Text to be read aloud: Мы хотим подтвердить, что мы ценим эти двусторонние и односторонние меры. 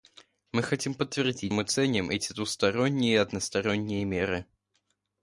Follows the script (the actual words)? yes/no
no